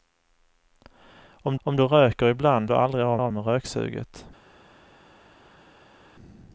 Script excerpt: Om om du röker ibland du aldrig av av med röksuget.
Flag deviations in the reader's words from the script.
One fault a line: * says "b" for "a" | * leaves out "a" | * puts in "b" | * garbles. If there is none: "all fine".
all fine